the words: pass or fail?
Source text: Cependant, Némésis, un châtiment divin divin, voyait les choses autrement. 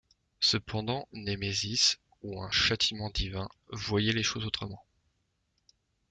fail